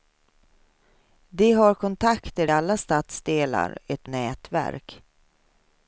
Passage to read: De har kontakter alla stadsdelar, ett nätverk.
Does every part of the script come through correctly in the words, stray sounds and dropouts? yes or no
yes